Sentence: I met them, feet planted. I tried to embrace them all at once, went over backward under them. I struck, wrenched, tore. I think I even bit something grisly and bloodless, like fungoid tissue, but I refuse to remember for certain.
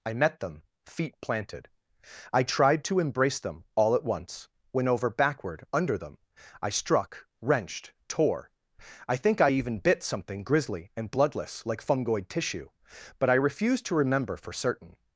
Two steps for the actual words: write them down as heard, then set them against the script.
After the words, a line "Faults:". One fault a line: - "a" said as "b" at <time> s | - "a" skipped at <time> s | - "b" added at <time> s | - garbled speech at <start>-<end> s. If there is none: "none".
I met them, feet planted. I tried to embrace them all at once, went over backward under them. I struck, wrenched, tore. I think I even bit something grisly and bloodless, like fungoid tissue, but I refuse to remember for certain.
Faults:
none